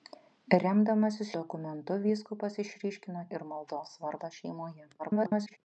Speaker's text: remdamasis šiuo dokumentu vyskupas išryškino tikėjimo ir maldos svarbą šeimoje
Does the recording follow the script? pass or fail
fail